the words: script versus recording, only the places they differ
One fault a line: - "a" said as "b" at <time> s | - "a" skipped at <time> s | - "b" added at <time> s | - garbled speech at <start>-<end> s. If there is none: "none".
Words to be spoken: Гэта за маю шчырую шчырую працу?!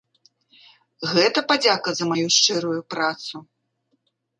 - "падзяка" added at 1.5 s
- "шчырую" skipped at 2.8 s